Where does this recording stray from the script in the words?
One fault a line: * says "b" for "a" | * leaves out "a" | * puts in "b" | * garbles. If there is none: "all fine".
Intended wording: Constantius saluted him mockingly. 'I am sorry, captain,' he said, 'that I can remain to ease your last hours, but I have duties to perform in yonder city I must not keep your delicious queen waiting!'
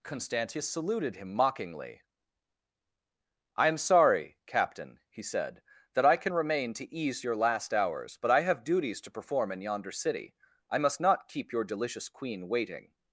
all fine